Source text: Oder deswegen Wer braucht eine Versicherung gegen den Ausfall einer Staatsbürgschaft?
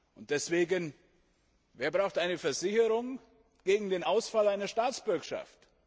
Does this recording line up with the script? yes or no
no